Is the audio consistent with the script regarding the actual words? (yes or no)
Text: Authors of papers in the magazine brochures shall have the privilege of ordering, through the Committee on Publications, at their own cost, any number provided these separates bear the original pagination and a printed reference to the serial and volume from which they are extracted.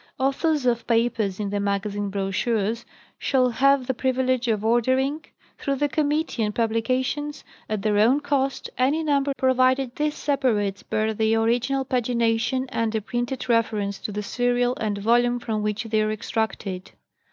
yes